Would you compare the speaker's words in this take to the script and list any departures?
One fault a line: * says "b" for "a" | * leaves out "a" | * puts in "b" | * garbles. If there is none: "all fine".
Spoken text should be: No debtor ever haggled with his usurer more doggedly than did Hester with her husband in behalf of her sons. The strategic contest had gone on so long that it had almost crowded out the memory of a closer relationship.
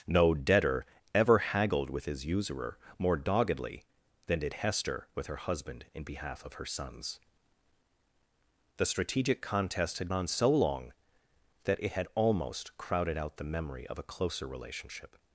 * leaves out "gone"